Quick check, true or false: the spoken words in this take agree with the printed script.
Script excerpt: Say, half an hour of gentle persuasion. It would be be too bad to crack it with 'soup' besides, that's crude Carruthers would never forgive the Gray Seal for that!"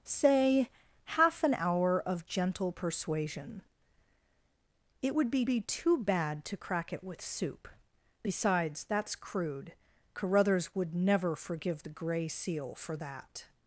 true